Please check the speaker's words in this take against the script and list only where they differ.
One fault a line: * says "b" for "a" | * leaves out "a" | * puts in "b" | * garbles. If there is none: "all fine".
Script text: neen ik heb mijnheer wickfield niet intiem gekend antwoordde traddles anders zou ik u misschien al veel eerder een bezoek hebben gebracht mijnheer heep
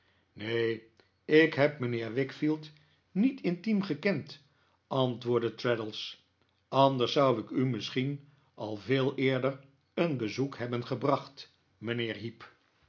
all fine